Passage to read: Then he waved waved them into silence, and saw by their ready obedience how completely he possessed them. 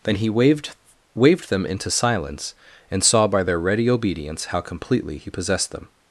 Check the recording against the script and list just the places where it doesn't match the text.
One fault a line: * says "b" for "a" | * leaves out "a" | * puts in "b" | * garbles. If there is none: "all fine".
all fine